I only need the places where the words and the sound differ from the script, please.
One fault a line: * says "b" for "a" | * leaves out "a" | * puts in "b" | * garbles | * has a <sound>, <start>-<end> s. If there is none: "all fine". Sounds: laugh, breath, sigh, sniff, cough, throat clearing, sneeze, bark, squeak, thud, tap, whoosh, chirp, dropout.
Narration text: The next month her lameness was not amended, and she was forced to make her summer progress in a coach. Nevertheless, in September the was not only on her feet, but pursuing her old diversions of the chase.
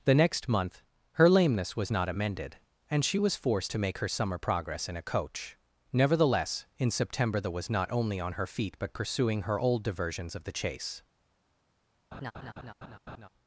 * has a laugh, 12.1-13.3 s